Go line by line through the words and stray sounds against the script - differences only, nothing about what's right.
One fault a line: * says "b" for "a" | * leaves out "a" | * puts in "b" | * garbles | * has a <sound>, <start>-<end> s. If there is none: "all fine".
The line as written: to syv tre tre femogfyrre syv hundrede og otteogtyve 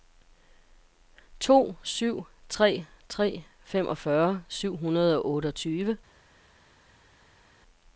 all fine